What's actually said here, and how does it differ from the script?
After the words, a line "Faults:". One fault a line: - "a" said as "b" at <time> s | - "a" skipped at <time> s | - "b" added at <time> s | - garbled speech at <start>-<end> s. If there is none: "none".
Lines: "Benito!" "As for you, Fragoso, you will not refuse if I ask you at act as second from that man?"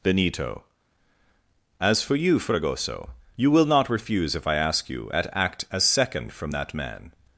"Benito!" "As for you, Fragoso, you will not refuse if I ask you at act as second from that man?"
Faults:
none